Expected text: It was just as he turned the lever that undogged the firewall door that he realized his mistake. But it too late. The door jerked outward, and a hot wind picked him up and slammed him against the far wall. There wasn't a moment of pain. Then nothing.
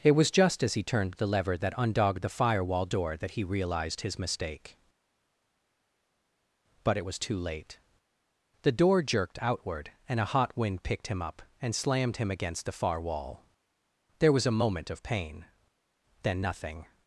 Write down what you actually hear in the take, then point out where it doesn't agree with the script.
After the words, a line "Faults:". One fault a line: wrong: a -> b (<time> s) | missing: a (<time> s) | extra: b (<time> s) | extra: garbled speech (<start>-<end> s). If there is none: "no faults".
It was just as he turned the lever that undogged the firewall door that he realized his mistake. But it was too late. The door jerked outward, and a hot wind picked him up and slammed him against the far wall. There was a moment of pain. Then nothing.
Faults:
extra: was (7.0 s)
wrong: wasn't -> was (14.3 s)